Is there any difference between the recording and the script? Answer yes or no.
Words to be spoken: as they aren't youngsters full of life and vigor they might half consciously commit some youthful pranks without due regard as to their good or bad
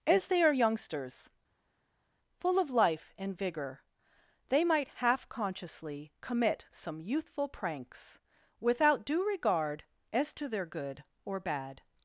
yes